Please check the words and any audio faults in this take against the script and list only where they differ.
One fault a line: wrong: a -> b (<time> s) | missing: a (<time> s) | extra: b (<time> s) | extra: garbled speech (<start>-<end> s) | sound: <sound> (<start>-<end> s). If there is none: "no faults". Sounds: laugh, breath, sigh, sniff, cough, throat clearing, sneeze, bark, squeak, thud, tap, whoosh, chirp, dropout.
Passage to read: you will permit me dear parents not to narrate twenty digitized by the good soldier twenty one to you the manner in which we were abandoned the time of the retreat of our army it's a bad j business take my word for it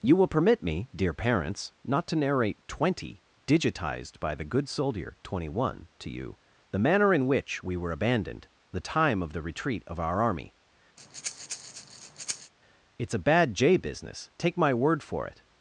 sound: breath (11.0-12.5 s)